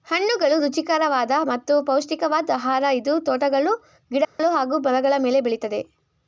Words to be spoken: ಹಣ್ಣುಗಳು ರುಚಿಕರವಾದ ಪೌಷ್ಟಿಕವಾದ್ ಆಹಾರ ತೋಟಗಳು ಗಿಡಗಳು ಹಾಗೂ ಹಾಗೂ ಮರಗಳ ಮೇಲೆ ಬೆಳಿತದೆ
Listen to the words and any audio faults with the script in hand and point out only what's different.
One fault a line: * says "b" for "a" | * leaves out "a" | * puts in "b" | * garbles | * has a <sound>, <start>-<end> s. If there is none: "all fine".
* puts in "ಮತ್ತು"
* puts in "ಇದು"
* has a dropout, 4.2-4.4 s
* leaves out "ಹಾಗೂ"